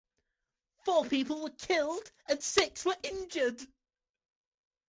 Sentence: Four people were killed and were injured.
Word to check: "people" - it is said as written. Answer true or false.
true